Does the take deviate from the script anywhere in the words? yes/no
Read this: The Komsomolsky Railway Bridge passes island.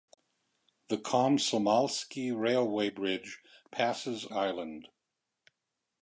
no